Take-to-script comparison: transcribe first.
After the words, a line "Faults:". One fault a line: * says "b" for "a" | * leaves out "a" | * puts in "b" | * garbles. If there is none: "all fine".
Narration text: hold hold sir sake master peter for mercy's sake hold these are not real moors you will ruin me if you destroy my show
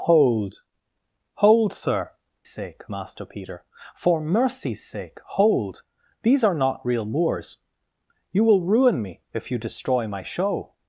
hold hold sir sake master peter for mercy's sake hold these are not real moors you will ruin me if you destroy my show
Faults:
all fine